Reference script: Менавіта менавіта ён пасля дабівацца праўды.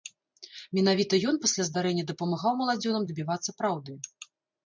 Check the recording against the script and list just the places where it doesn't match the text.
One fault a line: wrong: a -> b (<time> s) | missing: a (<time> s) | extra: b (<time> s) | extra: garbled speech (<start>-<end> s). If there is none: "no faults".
missing: менавіта (1.1 s)
extra: здарэння дапамагаў маладзёнам (1.7 s)